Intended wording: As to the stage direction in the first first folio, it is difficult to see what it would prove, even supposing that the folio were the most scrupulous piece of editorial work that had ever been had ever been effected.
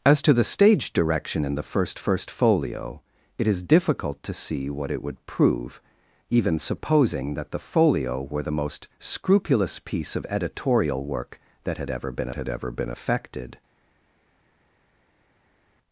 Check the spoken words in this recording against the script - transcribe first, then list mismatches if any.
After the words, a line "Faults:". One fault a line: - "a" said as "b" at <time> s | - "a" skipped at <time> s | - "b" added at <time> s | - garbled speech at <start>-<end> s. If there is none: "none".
As to the stage direction in the first first folio, it is difficult to see what it would prove, even supposing that the folio were the most scrupulous piece of editorial work that had ever been had ever been effected.
Faults:
none